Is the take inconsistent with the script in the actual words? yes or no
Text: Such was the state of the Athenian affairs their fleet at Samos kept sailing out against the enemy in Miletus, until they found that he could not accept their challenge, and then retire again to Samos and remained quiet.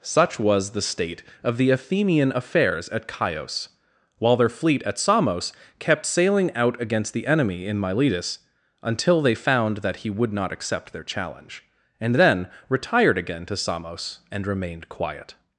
yes